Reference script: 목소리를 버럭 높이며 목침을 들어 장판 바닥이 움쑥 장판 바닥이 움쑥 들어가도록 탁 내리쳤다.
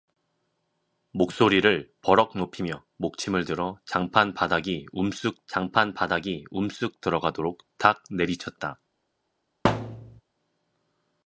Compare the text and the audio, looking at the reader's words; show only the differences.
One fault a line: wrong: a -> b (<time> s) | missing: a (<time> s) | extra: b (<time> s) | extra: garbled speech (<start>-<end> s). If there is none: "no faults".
no faults